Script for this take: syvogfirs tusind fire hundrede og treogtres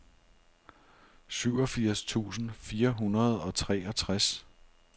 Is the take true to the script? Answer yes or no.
yes